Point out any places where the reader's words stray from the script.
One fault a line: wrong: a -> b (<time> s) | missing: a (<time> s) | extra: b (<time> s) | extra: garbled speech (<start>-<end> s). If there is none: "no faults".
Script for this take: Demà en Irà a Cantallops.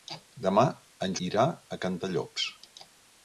no faults